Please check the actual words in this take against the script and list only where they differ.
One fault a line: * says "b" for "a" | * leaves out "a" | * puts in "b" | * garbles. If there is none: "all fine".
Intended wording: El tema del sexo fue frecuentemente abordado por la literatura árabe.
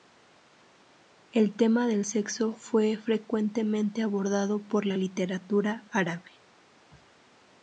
all fine